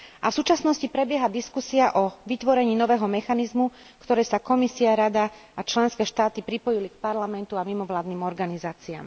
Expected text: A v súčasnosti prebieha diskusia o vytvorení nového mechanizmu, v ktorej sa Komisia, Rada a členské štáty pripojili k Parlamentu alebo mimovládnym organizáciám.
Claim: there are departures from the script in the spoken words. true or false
true